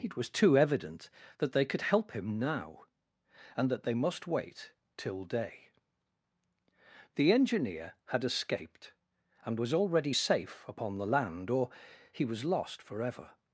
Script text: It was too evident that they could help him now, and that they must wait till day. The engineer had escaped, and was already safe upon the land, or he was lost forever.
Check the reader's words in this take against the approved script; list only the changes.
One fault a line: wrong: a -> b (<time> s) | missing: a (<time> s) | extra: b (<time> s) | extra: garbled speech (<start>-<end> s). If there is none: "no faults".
no faults